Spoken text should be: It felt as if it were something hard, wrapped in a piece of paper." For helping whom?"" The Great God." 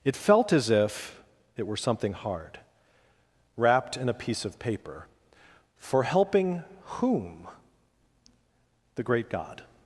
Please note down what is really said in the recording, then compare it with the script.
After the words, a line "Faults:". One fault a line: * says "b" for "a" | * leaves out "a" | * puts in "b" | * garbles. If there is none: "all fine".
It felt as if it were something hard, wrapped in a piece of paper." For helping whom?"" The Great God."
Faults:
all fine